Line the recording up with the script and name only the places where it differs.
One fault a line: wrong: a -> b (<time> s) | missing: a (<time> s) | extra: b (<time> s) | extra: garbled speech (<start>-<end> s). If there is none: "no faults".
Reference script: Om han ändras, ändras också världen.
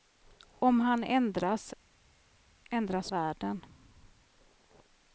missing: också (3.1 s)